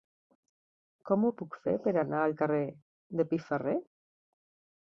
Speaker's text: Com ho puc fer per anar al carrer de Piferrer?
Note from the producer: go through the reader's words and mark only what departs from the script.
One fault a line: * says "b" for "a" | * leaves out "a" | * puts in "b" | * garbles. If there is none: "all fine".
all fine